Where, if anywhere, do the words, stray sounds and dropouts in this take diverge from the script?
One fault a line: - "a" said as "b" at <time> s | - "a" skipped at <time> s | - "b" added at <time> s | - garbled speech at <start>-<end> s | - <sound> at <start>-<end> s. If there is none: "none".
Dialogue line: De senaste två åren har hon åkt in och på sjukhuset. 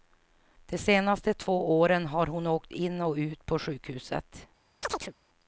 - "ut" added at 3.1 s
- chirp at 4.8-5.1 s